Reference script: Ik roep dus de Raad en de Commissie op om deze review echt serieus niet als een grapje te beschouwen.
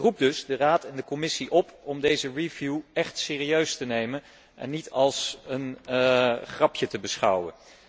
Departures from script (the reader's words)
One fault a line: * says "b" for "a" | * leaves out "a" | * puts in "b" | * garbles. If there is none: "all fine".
* puts in "te nemen en"